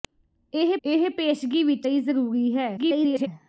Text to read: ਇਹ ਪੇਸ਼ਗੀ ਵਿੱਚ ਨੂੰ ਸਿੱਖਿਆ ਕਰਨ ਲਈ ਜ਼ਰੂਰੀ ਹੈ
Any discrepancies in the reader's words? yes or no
yes